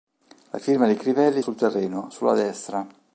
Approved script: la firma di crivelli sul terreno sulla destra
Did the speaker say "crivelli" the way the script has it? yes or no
yes